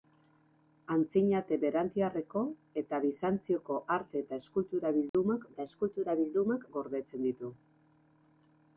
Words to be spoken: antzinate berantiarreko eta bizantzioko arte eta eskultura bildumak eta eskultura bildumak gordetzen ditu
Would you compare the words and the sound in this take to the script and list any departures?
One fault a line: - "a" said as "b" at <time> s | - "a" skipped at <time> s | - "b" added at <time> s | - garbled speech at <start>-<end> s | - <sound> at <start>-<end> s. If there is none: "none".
- dropout at 5.1-5.1 s